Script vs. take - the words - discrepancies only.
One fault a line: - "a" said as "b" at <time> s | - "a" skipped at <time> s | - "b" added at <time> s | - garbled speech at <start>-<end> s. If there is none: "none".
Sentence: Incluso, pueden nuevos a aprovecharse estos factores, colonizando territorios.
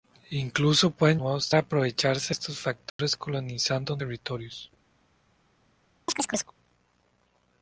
none